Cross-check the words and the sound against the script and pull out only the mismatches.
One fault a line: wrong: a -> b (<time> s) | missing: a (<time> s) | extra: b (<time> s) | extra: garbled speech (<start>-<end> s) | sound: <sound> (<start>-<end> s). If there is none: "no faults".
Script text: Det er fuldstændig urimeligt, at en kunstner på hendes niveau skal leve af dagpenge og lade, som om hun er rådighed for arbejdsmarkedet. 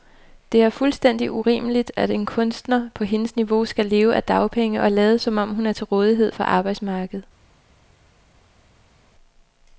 extra: til (5.7 s)